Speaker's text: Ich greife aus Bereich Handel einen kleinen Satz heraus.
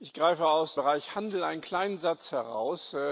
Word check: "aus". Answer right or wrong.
right